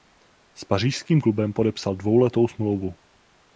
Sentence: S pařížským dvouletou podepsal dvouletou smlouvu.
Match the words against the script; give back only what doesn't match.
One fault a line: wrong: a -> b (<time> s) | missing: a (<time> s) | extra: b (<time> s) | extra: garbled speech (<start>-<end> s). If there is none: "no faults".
wrong: dvouletou -> klubem (1.2 s)